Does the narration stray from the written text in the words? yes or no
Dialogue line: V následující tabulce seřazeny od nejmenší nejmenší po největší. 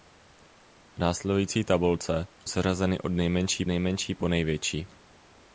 no